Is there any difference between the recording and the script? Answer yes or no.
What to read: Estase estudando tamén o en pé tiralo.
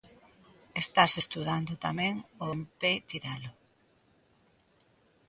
no